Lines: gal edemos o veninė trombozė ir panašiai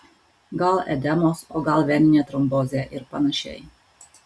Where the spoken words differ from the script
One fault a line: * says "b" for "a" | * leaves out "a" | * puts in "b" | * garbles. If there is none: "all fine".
* puts in "gal"